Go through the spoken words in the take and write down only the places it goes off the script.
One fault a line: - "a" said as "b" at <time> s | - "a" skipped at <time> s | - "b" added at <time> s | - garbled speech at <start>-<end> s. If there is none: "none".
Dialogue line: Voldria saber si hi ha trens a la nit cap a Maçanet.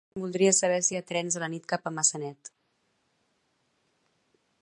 none